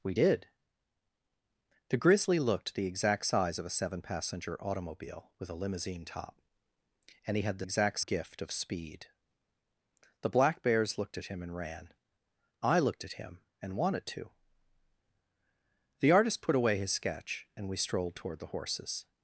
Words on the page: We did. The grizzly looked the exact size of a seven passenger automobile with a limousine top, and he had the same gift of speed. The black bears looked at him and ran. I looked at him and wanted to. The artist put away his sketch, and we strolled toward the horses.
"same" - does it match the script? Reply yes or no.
no